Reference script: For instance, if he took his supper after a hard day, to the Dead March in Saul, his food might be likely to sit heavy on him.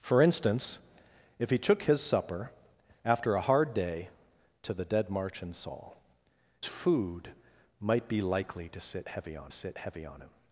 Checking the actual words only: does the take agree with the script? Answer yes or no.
no